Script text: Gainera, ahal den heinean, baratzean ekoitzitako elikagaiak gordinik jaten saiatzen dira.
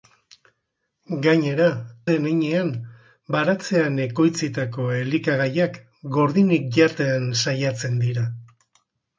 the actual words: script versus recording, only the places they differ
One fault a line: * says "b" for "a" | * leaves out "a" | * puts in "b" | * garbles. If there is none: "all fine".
* leaves out "ahal"